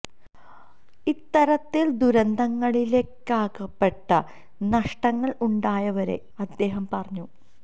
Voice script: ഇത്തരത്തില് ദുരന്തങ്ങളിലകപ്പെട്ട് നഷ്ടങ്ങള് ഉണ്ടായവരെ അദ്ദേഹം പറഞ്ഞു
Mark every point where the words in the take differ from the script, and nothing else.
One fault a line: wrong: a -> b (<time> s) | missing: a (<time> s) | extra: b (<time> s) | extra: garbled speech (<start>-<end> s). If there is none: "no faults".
no faults